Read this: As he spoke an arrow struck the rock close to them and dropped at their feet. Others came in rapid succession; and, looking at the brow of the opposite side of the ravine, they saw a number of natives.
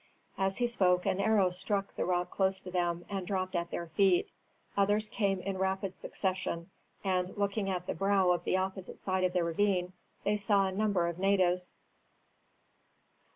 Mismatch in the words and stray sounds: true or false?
false